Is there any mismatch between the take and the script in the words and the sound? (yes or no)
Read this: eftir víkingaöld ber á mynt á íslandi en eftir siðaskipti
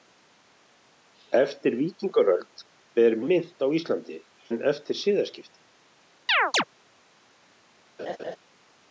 yes